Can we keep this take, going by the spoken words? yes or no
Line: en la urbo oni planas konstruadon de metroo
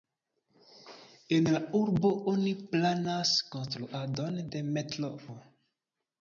yes